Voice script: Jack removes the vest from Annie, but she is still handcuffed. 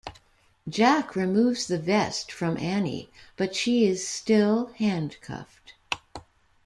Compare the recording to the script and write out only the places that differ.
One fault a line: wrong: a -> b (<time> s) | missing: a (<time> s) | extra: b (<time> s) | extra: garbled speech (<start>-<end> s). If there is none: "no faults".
no faults